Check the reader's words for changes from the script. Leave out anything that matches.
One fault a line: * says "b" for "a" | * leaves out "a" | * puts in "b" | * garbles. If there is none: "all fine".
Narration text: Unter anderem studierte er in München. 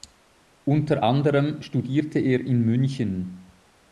all fine